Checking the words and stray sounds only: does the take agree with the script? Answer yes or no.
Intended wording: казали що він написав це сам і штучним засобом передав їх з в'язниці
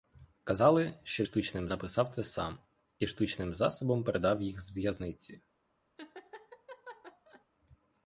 no